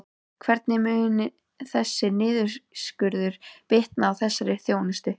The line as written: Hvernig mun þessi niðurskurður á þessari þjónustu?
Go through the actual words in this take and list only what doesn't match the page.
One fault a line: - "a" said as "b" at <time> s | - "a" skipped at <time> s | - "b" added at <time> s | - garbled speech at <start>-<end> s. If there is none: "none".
- "bitna" added at 3.7 s